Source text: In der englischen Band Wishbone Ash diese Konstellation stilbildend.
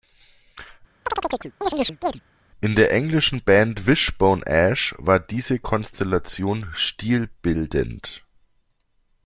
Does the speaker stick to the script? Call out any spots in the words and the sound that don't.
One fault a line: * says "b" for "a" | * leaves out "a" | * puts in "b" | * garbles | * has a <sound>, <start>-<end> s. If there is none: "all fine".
* has a chirp, 1.1-2.2 s
* puts in "war"